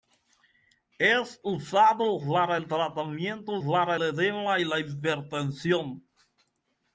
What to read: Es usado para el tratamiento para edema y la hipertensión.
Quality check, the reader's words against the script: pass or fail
pass